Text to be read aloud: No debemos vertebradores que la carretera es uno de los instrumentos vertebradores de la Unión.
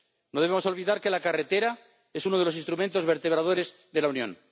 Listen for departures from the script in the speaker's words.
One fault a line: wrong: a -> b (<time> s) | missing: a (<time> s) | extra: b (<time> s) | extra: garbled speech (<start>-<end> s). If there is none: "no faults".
wrong: vertebradores -> olvidar (0.7 s)